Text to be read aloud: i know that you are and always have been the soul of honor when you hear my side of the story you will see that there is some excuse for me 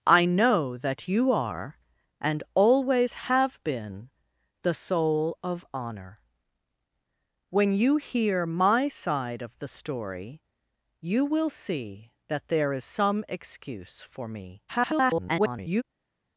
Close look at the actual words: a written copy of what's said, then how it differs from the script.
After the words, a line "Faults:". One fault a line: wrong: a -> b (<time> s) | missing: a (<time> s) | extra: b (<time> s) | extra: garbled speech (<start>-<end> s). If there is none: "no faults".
i know that you are and always have been the soul of honor when you hear my side of the story you will see that there is some excuse for me [garbled]
Faults:
extra: garbled speech (14.7-15.8 s)